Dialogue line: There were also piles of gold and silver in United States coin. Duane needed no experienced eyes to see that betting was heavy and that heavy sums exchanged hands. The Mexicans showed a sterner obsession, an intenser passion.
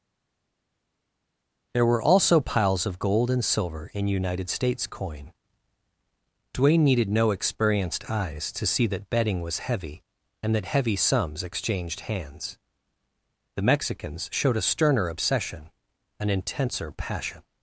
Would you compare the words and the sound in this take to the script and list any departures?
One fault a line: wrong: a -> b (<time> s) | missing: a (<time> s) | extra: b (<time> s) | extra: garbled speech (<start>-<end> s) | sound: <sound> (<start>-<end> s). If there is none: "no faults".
no faults